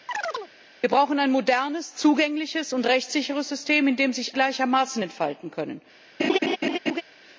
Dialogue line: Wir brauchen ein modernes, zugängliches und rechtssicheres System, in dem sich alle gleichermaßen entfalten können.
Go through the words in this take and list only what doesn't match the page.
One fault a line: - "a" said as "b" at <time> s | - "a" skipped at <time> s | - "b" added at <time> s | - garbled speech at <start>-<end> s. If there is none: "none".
- "alle" skipped at 4.4 s